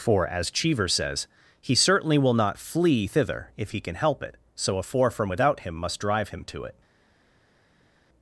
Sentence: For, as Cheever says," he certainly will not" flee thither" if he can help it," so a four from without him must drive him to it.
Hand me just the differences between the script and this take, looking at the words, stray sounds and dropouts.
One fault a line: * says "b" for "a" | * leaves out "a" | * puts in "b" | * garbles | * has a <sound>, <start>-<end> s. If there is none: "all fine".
all fine